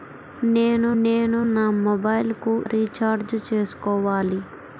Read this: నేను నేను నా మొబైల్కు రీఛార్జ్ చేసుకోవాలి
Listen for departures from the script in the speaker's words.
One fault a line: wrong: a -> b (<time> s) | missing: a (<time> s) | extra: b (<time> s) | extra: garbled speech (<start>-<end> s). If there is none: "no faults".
no faults